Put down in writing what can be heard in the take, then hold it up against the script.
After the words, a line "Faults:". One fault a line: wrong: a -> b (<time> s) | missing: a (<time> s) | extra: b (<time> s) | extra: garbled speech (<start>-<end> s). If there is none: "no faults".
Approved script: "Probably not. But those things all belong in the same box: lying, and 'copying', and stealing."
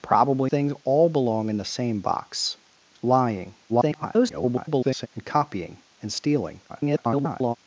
"Probably things all belong in the same box: lying, [garbled] and 'copying', and stealing." [garbled]
Faults:
missing: not But those (0.5 s)
extra: garbled speech (3.7-5.1 s)
extra: garbled speech (6.7-7.5 s)